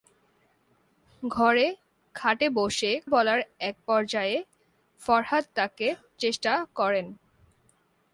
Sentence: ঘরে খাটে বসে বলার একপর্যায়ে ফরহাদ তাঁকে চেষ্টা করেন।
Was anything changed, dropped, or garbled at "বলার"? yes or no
no